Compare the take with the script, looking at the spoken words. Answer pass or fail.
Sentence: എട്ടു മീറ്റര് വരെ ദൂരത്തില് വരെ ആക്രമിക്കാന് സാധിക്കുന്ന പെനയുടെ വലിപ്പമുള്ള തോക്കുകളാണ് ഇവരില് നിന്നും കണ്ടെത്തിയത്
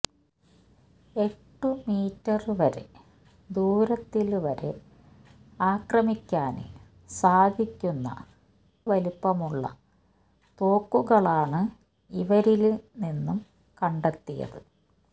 fail